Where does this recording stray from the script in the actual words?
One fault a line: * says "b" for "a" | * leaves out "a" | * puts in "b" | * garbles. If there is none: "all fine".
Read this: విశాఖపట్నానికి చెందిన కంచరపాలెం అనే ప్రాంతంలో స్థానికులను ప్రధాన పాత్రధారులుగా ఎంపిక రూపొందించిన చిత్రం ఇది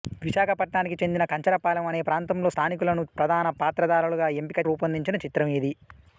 all fine